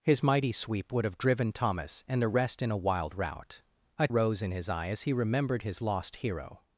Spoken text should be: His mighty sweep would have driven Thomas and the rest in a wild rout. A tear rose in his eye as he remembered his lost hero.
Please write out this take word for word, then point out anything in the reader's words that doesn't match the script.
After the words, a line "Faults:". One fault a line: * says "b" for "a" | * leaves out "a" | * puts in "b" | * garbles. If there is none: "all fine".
His mighty sweep would have driven Thomas and the rest in a wild rout. A rose in his eye as he remembered his lost hero.
Faults:
* leaves out "tear"